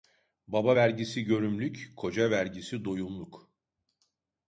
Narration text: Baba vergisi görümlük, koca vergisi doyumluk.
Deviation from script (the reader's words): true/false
false